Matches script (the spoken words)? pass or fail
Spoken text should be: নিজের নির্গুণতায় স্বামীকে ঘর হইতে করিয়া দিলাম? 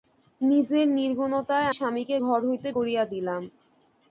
pass